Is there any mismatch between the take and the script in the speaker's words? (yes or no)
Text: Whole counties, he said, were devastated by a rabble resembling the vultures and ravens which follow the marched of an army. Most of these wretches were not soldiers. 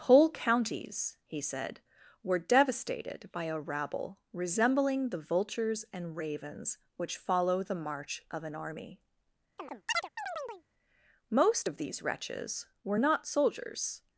yes